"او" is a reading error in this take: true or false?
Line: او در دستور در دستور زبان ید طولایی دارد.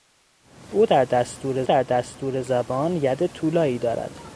false